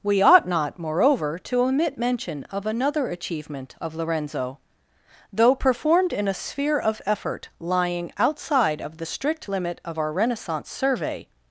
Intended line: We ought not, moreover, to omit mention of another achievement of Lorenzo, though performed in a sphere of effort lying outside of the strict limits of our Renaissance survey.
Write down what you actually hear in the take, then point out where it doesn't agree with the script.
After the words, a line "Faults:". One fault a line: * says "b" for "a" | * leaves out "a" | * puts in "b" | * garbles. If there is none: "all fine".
We ought not, moreover, to omit mention of another achievement of Lorenzo, though performed in a sphere of effort lying outside of the strict limit of our Renaissance survey.
Faults:
* says "limit" for "limits"